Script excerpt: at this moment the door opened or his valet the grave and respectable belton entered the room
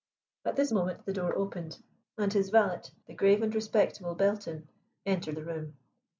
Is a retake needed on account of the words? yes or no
yes